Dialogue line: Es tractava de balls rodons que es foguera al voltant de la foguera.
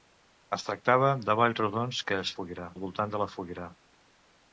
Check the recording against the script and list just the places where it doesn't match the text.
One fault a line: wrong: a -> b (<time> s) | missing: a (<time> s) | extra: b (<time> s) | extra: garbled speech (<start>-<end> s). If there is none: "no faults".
no faults